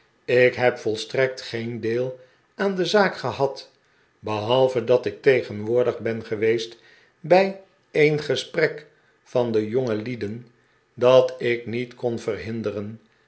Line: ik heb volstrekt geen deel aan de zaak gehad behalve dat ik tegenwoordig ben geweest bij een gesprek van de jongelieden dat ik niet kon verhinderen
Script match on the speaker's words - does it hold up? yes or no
yes